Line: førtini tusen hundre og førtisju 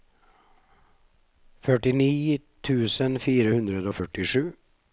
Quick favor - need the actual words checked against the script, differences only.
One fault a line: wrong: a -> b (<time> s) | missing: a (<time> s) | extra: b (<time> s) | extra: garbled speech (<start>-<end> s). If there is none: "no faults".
extra: fire (3.3 s)